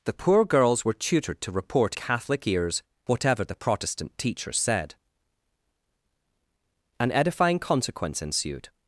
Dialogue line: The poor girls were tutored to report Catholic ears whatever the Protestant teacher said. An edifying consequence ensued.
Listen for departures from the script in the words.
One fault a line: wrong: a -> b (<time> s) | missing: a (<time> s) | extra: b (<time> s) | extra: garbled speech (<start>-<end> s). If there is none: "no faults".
no faults